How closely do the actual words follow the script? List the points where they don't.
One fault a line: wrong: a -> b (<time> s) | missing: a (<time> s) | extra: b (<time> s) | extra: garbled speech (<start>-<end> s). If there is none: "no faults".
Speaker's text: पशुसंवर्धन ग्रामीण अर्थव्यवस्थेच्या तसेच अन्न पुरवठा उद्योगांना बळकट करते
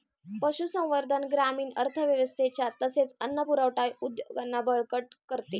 no faults